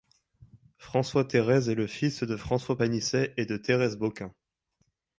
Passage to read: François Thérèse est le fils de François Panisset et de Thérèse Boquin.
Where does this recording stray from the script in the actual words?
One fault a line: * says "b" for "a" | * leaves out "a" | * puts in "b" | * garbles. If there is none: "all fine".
all fine